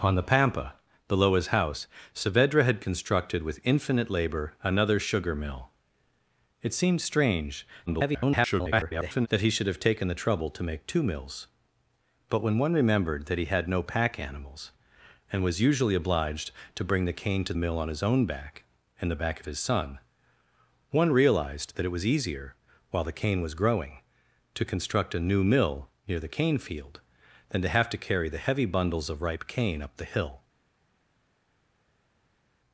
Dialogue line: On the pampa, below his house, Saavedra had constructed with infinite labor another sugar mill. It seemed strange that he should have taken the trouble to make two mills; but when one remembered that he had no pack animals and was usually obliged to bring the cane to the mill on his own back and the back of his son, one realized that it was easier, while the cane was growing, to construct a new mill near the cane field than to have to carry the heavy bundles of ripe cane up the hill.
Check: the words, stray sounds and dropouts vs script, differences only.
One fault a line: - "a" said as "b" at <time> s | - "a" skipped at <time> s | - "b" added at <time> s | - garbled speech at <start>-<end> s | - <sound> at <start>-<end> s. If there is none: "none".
- garbled speech at 7.9-9.3 s
- "the" skipped at 17.5 s